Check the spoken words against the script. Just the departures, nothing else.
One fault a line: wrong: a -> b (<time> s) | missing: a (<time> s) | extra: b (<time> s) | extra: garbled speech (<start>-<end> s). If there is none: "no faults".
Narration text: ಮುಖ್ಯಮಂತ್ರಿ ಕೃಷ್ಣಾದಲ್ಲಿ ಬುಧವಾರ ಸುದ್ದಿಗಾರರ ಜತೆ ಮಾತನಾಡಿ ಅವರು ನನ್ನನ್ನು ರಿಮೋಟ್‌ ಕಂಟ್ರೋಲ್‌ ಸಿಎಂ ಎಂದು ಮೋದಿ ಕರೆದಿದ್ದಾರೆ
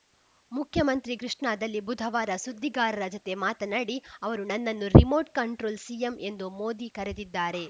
no faults